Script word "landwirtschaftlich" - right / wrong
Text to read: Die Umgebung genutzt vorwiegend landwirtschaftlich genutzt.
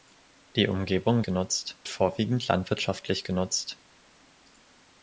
right